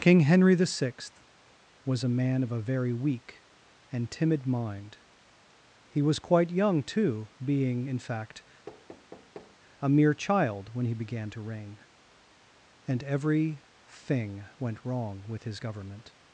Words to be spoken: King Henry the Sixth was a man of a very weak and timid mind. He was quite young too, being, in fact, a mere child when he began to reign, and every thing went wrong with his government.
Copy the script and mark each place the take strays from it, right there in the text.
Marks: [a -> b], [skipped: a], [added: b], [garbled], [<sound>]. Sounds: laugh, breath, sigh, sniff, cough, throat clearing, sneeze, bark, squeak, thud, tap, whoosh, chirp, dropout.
King Henry the Sixth was a man of a very weak and timid mind. He was quite young too, being, in fact, [thud] a mere child when he began to reign, and every thing went wrong with his government.